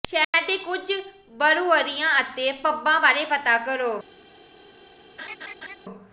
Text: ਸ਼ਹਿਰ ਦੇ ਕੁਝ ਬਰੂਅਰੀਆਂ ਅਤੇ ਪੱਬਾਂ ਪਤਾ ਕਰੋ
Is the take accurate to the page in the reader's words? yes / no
no